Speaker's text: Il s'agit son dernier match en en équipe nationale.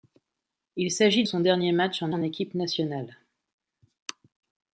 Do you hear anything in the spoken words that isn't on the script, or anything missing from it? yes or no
no